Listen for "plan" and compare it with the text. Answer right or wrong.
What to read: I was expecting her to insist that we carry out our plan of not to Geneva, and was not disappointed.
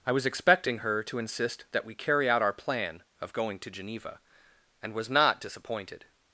right